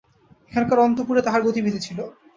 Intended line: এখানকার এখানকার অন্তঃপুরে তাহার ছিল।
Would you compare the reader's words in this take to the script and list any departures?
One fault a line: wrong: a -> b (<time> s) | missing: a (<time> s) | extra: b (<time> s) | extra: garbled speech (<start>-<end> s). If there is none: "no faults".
missing: এখানকার (0.8 s)
extra: গতিবিধি (1.5 s)